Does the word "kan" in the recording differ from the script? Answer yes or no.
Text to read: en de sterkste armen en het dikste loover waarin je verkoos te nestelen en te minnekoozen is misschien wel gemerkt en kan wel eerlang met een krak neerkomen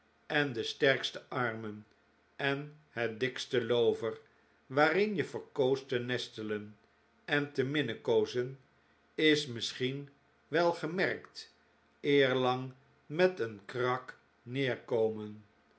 yes